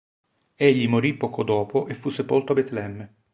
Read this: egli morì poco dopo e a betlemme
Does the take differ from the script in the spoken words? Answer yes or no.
yes